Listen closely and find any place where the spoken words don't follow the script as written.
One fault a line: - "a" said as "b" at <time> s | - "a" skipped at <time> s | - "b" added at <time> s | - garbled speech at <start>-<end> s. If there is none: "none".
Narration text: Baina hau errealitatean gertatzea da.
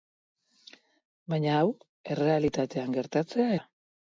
none